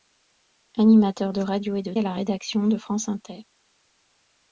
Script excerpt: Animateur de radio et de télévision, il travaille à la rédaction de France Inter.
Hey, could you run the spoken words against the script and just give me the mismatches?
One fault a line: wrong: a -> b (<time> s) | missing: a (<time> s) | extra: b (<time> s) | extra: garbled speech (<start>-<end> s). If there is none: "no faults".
missing: télévision il travaille (1.9 s)